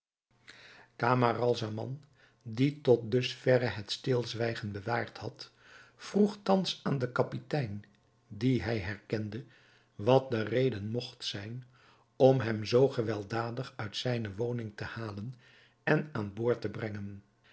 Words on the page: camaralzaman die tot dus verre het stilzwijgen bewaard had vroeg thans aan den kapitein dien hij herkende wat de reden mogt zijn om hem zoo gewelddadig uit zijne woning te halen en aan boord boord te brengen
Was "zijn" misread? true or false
false